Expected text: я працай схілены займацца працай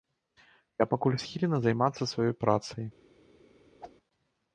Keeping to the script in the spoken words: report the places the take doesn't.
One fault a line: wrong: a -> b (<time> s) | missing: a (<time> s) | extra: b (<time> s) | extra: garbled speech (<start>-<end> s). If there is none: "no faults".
wrong: працай -> пакуль (0.9 s)
extra: сваёй (2.1 s)